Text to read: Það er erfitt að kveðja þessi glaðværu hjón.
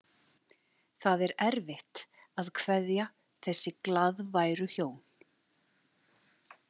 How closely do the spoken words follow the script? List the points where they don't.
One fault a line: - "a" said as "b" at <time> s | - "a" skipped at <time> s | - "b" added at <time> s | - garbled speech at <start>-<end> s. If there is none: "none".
none